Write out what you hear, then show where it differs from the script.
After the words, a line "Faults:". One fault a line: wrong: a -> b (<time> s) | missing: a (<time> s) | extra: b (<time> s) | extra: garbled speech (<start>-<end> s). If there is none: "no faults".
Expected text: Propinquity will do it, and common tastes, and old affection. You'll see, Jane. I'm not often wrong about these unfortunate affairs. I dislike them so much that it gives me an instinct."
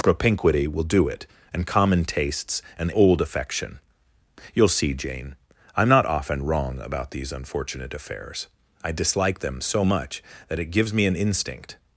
Propinquity will do it, and common tastes, and old affection. You'll see, Jane. I'm not often wrong about these unfortunate affairs. I dislike them so much that it gives me an instinct."
Faults:
no faults